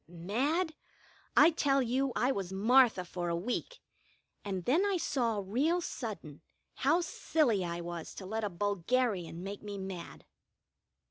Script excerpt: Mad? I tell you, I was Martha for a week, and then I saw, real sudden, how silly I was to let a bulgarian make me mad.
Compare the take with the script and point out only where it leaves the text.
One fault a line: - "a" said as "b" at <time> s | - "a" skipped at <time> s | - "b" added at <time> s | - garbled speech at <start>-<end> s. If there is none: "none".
none